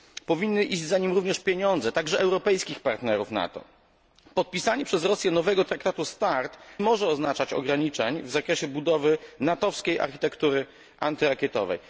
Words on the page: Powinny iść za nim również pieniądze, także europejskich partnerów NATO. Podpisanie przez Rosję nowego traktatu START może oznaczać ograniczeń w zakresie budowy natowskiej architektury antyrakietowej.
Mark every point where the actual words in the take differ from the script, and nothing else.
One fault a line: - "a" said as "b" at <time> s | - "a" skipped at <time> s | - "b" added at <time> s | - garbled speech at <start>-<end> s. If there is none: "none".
none